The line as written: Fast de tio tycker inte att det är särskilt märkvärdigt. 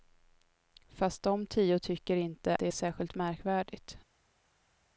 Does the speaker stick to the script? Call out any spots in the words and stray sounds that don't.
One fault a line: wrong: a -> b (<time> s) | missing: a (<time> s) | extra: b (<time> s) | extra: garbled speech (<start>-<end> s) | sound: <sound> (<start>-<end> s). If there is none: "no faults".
missing: att (2.6 s)